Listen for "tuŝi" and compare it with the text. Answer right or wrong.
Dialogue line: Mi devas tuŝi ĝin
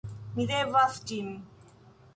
wrong